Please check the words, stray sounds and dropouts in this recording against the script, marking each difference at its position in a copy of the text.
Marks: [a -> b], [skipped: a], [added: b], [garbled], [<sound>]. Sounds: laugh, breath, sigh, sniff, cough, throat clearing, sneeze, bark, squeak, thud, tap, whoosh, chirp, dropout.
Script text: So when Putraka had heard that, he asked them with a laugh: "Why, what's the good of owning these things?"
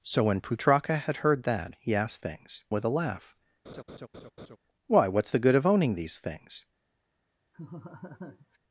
So when Putraka had heard that, he asked [them -> things] with a laugh: [laugh] "Why, what's the good of owning these things?" [laugh]